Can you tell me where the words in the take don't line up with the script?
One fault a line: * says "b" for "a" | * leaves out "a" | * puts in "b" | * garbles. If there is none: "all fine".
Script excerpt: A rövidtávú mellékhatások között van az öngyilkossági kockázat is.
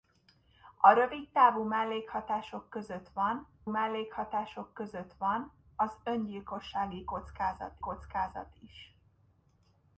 * puts in "mellékhatások között van"
* puts in "kockázat"